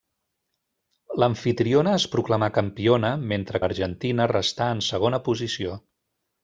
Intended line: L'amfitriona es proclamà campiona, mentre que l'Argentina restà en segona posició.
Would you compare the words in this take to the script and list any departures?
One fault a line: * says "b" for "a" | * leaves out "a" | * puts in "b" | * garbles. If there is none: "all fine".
* leaves out "que"